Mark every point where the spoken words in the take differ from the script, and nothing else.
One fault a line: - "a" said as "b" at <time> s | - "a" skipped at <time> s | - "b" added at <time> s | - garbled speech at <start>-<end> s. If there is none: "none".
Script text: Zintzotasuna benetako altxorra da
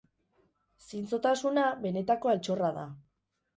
none